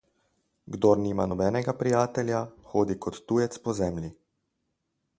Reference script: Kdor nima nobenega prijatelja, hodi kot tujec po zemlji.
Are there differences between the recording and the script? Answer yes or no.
no